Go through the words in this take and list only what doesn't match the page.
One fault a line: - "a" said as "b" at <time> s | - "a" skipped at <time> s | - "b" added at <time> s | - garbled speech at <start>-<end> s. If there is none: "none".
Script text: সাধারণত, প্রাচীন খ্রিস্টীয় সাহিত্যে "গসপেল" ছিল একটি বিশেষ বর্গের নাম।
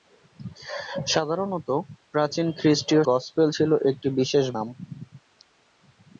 - "সাহিত্যে" skipped at 3.0 s
- "বর্গের" skipped at 4.4 s